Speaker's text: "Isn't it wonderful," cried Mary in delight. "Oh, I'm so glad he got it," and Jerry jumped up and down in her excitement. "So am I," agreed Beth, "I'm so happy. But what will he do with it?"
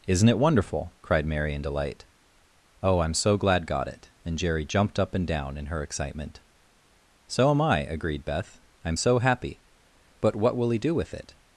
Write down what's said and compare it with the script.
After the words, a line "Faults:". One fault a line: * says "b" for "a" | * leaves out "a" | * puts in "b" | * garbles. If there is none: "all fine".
"Isn't it wonderful," cried Mary in delight. "Oh, I'm so glad got it," and Jerry jumped up and down in her excitement. "So am I," agreed Beth, "I'm so happy. But what will he do with it?"
Faults:
* leaves out "he"